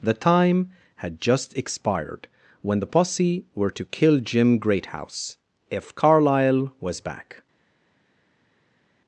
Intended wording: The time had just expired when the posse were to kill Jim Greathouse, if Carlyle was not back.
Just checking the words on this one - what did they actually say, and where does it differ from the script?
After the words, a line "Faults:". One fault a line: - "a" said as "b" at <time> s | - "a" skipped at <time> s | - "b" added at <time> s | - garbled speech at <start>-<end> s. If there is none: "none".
The time had just expired when the posse were to kill Jim Greathouse, if Carlyle was back.
Faults:
- "not" skipped at 7.0 s